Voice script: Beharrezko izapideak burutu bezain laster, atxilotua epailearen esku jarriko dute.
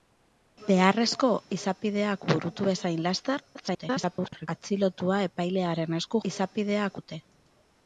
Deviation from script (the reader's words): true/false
true